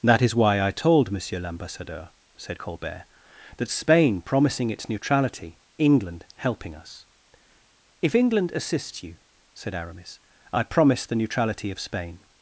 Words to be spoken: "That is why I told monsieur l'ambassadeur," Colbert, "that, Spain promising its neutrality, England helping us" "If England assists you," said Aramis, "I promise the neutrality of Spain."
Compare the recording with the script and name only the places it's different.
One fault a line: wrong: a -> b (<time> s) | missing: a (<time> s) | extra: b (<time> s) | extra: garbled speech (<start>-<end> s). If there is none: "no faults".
extra: said (2.4 s)